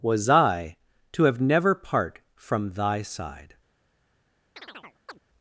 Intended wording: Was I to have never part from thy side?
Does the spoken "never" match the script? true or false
true